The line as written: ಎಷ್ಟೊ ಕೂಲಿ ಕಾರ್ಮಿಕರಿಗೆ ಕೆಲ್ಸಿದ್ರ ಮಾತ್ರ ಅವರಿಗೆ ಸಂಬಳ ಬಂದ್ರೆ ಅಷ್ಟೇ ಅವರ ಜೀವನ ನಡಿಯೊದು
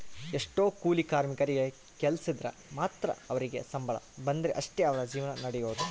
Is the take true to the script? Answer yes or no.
yes